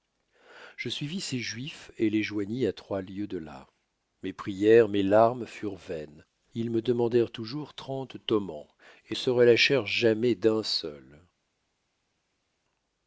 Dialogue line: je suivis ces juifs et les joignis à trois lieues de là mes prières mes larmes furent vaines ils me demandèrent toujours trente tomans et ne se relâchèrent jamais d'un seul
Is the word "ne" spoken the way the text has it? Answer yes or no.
no